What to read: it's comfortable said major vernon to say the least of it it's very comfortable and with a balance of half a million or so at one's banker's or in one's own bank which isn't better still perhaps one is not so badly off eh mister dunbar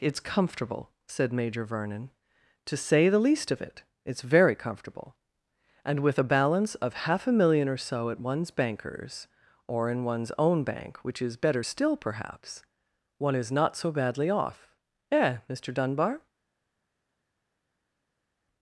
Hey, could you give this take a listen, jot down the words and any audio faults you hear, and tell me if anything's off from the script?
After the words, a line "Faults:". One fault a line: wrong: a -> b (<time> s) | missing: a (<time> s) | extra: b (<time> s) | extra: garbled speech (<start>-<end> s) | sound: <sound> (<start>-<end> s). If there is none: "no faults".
it's comfortable said major vernon to say the least of it it's very comfortable and with a balance of half a million or so at one's banker's or in one's own bank which is better still perhaps one is not so badly off eh mister dunbar
Faults:
wrong: isn't -> is (11.2 s)